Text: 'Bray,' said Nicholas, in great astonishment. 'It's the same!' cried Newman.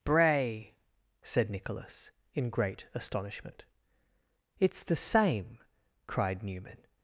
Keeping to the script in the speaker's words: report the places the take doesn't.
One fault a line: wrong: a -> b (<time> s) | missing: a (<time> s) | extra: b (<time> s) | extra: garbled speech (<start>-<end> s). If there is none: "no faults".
no faults